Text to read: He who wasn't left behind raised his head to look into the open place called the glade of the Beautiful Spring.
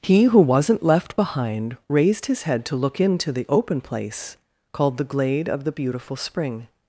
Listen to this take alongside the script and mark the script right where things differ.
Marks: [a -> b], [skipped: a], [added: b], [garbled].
He who wasn't left behind raised his head to look into the open place called the glade of the Beautiful Spring.